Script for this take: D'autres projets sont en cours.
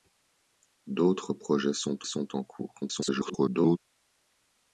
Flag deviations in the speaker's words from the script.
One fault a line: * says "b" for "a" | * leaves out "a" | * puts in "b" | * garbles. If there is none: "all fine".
* puts in "sont"
* garbles